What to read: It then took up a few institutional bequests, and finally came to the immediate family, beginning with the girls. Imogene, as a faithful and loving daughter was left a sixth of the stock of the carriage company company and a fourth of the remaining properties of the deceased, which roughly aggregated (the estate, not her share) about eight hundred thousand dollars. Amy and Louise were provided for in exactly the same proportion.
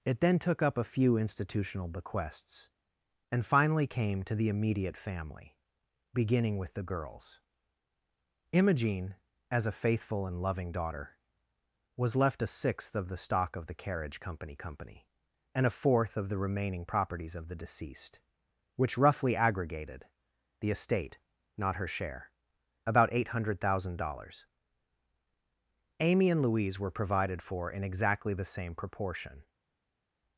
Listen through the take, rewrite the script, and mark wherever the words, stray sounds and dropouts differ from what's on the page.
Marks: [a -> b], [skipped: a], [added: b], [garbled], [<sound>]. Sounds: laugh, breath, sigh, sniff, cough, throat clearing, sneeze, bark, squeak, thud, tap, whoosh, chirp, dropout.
It then took up a few institutional bequests, and finally came to the immediate family, beginning with the girls. Imogene, as a faithful and loving daughter was left a sixth of the stock of the carriage company company and a fourth of the remaining properties of the deceased, which roughly aggregated (the estate, not her share) about eight hundred thousand dollars. Amy and Louise were provided for in exactly the same proportion.